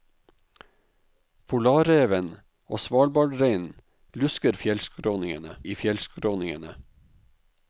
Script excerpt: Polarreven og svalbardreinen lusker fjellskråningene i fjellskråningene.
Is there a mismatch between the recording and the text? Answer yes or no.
no